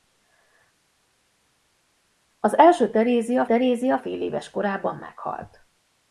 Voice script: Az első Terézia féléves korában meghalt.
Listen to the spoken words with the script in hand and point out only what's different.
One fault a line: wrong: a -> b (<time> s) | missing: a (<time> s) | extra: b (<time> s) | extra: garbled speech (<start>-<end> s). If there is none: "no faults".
extra: Terézia (3.4 s)